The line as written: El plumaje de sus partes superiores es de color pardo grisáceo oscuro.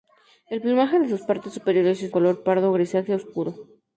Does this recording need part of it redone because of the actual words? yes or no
yes